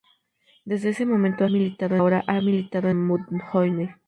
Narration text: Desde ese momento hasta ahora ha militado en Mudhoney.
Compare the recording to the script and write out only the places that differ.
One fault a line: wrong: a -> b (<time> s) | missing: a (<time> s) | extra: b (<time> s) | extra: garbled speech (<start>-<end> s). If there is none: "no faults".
wrong: hasta -> militado (1.5 s)
missing: en (2.9 s)